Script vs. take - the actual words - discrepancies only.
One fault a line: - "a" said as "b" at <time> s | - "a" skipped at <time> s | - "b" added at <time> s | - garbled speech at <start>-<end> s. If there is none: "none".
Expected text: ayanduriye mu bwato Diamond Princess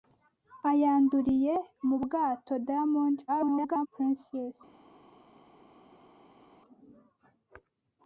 - garbled speech at 3.3-3.9 s